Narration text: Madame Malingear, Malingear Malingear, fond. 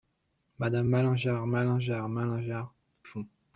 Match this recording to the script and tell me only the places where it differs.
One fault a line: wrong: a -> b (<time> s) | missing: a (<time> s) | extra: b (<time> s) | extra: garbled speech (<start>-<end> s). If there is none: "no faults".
no faults